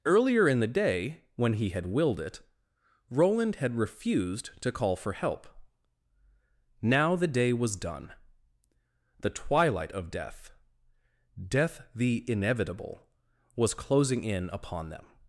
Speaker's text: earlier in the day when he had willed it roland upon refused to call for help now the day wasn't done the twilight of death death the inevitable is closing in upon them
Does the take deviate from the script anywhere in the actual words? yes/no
yes